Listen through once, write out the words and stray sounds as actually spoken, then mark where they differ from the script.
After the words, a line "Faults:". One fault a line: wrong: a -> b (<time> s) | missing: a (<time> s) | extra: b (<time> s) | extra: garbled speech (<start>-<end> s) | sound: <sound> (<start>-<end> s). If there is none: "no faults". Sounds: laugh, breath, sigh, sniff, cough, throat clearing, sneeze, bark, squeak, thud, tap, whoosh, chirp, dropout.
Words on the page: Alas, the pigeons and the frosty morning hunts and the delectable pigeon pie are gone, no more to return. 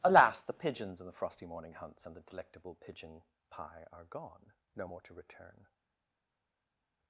Alas, the pigeons and the frosty morning hunts and the delectable pigeon pie are gone, no more to return.
Faults:
no faults